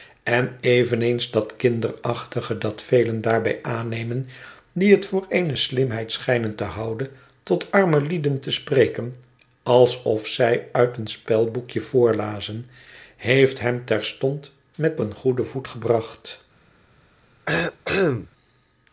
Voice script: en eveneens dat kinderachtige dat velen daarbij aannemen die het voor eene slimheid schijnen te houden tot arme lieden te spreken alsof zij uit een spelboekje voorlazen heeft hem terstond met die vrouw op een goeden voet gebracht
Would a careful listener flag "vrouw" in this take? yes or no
yes